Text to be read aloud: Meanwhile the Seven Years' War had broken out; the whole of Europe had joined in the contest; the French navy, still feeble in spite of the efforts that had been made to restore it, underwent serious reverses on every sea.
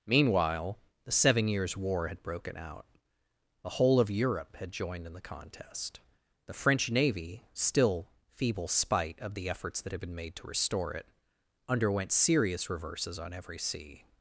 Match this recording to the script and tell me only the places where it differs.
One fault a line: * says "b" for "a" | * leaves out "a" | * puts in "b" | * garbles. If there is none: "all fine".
* leaves out "in"